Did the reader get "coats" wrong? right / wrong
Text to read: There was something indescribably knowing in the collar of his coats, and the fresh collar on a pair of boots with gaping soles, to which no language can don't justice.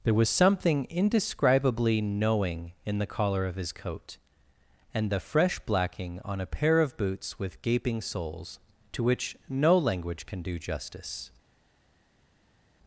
wrong